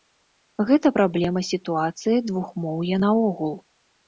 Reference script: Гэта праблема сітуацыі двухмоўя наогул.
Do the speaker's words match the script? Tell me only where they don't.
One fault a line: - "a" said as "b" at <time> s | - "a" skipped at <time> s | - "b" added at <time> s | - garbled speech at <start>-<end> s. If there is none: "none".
none